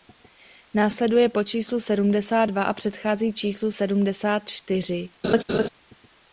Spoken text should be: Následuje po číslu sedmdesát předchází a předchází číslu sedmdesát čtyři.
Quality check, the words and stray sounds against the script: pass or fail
fail